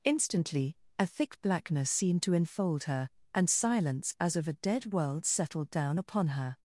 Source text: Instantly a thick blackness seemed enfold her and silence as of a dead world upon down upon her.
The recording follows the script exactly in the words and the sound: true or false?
false